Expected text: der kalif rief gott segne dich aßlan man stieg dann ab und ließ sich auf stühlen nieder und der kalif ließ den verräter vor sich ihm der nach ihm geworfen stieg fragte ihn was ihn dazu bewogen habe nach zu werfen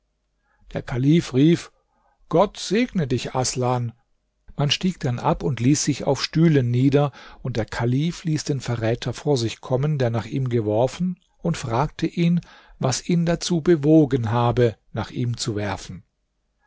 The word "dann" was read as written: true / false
true